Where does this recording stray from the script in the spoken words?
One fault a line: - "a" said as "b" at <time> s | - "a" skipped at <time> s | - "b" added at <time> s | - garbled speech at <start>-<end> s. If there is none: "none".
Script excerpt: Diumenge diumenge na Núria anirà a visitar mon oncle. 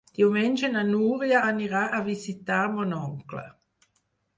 - "diumenge" skipped at 0.7 s